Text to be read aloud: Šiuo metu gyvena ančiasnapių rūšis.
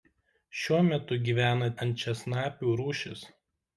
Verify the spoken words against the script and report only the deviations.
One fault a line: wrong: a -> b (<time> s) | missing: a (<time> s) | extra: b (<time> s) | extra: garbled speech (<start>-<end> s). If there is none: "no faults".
no faults